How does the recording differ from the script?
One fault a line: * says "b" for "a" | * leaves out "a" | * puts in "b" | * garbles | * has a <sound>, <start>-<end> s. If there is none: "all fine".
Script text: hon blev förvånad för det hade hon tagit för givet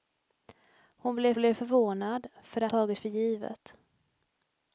* puts in "blev"
* leaves out "hade hon"